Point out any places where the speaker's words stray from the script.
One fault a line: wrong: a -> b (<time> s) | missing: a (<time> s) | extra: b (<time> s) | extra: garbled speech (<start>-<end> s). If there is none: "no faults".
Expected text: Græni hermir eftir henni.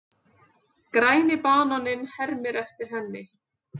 extra: bananinn (1.4 s)